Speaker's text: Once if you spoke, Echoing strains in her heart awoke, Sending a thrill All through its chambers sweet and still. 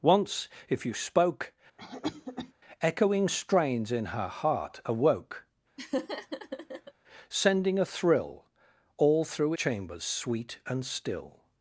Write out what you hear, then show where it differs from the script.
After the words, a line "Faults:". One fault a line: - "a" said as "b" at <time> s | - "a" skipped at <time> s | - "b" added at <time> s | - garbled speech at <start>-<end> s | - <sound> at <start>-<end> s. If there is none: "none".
Once if you spoke, Echoing strains in her heart awoke, Sending a thrill All through chambers sweet and still.
Faults:
- cough at 1.8-2.5 s
- laugh at 5.8-6.9 s
- "its" skipped at 9.5 s